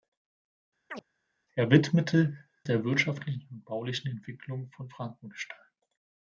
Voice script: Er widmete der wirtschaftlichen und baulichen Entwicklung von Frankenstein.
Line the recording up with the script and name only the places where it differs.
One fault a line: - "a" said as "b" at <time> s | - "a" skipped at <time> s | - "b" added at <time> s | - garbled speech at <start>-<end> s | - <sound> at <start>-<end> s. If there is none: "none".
- chirp at 0.9-1.0 s